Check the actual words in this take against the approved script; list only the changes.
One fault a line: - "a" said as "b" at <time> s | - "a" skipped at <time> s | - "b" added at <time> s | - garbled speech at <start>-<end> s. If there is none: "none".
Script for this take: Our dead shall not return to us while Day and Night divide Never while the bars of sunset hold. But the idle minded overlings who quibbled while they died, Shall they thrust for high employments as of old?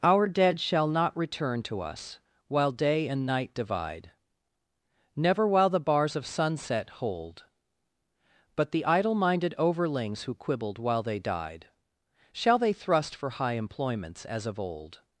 none